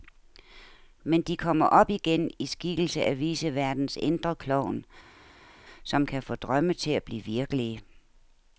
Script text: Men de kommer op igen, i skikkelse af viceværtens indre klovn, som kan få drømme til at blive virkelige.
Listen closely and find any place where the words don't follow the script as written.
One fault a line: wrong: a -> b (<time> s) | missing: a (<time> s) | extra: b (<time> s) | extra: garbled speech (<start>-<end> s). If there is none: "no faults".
no faults